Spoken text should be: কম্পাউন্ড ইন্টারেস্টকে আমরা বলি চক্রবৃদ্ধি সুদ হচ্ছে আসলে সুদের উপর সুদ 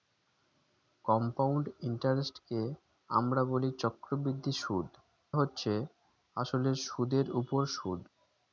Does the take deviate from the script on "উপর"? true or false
false